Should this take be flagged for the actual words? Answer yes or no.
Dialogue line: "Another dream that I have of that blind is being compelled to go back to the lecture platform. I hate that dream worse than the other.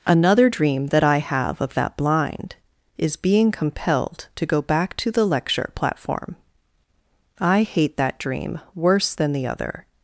no